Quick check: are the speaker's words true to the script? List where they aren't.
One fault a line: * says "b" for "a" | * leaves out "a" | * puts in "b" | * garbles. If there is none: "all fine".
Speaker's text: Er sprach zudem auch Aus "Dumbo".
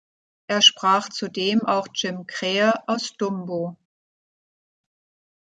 * puts in "Jim Krähe"